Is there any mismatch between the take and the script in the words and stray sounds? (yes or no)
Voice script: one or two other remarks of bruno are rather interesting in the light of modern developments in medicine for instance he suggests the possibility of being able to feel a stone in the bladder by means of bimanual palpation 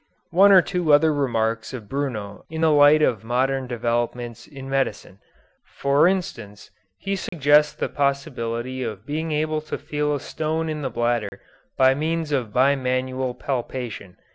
yes